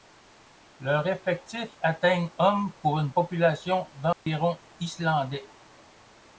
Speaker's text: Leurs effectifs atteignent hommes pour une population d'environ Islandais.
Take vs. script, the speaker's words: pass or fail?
pass